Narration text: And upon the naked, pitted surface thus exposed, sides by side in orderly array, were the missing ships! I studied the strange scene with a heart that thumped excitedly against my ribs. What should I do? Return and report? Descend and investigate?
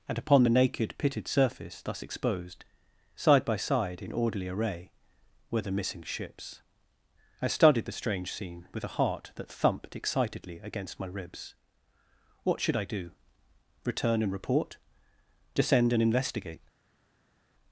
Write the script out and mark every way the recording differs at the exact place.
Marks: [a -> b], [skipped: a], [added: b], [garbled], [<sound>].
And upon the naked, pitted surface thus exposed, [sides -> side] by side in orderly array, were the missing ships! I studied the strange scene with a heart that thumped excitedly against my ribs. What should I do? Return and report? Descend and investigate?